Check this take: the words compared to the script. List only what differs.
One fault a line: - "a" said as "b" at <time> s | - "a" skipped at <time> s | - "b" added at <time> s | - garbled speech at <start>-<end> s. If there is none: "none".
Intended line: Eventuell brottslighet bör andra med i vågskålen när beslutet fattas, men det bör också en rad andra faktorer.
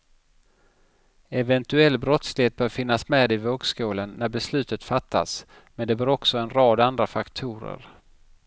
- "andra" said as "finnas" at 2.7 s